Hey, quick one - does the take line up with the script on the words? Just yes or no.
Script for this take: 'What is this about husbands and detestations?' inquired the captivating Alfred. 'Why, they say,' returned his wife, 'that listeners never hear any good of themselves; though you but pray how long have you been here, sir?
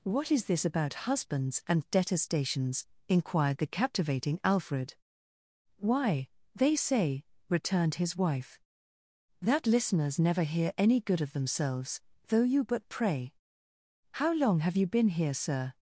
yes